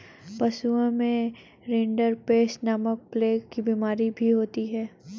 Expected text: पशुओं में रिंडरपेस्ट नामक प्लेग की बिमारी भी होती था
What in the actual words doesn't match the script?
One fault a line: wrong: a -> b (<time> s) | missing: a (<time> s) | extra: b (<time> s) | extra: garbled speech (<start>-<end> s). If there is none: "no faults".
wrong: था -> है (4.7 s)